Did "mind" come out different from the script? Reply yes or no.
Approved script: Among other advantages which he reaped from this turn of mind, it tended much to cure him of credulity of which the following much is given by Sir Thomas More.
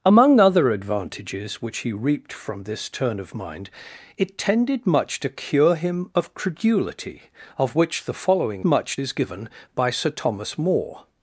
no